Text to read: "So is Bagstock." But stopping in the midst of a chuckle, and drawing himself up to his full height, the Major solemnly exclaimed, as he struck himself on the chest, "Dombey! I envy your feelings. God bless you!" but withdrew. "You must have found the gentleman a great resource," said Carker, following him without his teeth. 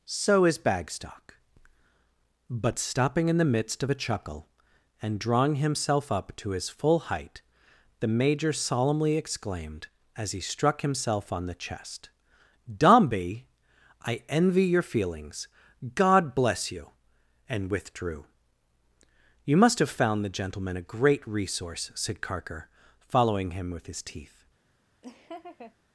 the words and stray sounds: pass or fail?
fail